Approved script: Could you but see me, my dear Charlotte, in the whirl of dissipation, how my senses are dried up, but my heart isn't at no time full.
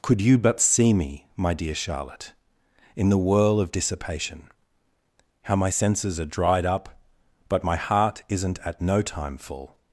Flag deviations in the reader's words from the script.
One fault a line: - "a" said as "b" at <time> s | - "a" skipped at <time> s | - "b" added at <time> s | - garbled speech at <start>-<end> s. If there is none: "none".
none